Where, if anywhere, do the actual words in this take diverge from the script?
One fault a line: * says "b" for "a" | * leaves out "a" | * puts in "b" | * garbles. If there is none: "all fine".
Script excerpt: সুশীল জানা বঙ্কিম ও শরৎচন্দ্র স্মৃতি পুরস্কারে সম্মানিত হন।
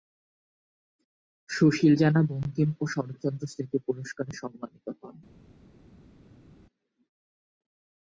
all fine